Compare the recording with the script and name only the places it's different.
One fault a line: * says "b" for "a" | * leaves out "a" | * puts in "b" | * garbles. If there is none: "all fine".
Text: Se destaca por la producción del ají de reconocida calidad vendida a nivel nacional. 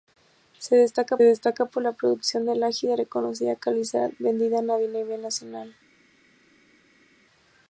* puts in "destaca"